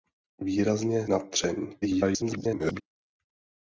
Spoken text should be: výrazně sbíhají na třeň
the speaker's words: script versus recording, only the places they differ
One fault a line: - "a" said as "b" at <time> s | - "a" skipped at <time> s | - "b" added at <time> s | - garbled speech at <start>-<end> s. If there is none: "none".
- "sbíhají" skipped at 1.1 s
- garbled speech at 1.8-2.8 s